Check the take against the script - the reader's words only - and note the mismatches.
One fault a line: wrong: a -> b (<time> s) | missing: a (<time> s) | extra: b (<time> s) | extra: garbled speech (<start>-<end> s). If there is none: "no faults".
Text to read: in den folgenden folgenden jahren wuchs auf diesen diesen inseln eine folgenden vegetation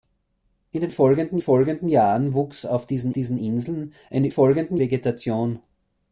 no faults